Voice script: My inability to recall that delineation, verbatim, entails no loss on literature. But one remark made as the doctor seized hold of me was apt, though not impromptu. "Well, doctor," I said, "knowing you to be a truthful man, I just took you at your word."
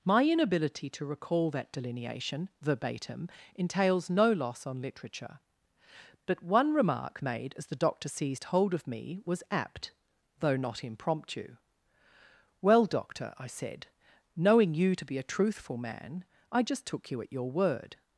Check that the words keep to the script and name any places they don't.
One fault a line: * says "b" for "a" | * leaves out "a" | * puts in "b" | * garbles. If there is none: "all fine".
all fine